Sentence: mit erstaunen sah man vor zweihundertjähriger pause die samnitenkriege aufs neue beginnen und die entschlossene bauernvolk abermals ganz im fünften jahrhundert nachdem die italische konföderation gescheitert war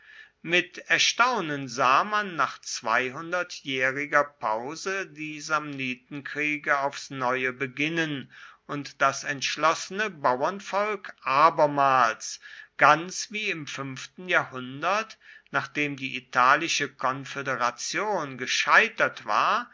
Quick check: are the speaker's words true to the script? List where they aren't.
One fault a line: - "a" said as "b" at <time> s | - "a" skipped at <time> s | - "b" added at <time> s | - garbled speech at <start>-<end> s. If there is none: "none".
- "vor" said as "nach" at 2.4 s
- "die" said as "das" at 9.0 s
- "wie" added at 13.3 s